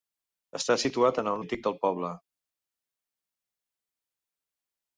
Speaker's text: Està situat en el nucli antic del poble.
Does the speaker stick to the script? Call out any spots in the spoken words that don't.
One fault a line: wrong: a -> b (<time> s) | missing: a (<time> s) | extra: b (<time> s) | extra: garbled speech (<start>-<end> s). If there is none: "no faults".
missing: nucli (1.4 s)